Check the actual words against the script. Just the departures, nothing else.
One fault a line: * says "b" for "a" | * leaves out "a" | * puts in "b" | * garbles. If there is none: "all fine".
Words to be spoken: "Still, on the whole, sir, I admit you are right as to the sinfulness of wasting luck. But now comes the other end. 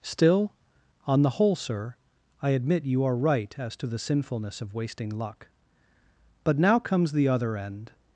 all fine